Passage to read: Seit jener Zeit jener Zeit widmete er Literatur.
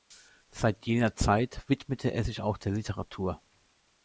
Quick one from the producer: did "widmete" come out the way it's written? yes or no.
no